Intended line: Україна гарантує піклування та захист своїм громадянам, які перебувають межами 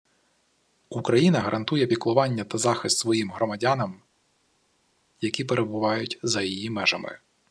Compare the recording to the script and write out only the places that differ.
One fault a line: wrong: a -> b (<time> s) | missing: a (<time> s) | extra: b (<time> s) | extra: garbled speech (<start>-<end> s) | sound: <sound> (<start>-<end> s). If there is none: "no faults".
extra: за її (6.2 s)